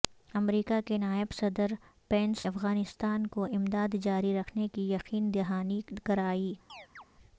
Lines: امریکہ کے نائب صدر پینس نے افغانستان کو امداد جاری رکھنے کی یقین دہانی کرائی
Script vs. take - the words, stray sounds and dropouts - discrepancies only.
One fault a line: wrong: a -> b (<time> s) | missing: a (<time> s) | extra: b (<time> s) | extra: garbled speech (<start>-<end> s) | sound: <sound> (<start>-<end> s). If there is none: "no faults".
missing: نے (2.5 s)
sound: chirp (6.7-7.0 s)